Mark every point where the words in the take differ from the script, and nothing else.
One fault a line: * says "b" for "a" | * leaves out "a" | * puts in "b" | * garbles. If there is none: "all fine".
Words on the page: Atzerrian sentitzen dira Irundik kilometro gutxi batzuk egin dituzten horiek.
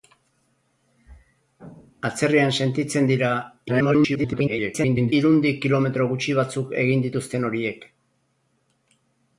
* garbles